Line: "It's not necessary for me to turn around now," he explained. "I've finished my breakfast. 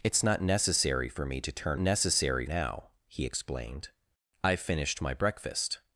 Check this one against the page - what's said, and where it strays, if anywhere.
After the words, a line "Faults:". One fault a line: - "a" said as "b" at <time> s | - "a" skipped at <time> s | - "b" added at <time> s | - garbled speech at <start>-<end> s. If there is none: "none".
"It's not necessary for me to turn necessary now," he explained. "I've finished my breakfast.
Faults:
- "around" said as "necessary" at 1.8 s